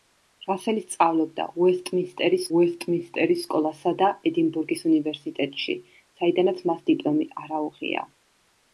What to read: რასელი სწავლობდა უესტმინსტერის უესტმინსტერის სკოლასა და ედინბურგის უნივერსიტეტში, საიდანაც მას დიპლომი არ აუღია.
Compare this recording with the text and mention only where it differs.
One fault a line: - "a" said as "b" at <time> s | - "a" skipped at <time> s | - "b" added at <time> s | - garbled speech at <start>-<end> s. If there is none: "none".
none